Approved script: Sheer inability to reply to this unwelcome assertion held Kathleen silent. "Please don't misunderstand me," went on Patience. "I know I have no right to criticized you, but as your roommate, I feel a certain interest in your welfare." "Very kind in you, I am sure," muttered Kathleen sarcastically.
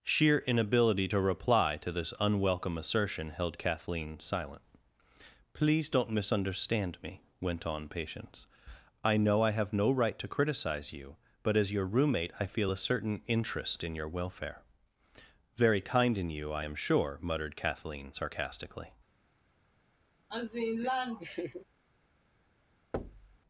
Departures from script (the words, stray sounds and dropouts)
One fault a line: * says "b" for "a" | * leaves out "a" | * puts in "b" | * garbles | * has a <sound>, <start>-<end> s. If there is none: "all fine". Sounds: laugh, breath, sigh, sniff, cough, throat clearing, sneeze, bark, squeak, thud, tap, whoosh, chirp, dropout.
* says "criticize" for "criticized"
* has a laugh, 20.3-21.7 s
* has a thud, 22.9-23.4 s